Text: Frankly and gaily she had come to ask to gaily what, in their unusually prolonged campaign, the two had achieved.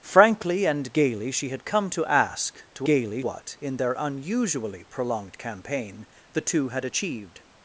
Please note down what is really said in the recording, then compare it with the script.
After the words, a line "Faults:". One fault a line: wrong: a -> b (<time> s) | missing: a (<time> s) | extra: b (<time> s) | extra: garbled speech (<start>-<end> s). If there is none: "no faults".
Frankly and gaily she had come to ask to gaily what, in their unusually prolonged campaign, the two had achieved.
Faults:
no faults